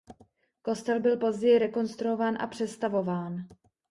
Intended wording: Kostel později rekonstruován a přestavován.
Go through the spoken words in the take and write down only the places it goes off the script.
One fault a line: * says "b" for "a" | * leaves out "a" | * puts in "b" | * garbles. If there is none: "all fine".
* puts in "byl"